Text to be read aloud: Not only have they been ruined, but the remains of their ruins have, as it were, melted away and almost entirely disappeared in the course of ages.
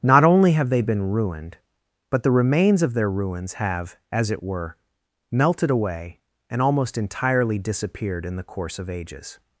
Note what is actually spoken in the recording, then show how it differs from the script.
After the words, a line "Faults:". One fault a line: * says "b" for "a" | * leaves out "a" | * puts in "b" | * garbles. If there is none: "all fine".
Not only have they been ruined, but the remains of their ruins have, as it were, melted away and almost entirely disappeared in the course of ages.
Faults:
all fine